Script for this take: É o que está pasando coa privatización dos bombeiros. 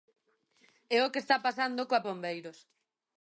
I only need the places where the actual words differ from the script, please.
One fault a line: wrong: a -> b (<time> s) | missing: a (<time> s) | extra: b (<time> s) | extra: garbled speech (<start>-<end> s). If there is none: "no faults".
missing: privatización dos (2.0 s)